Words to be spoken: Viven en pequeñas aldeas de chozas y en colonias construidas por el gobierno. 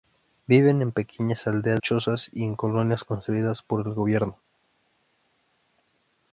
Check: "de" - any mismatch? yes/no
yes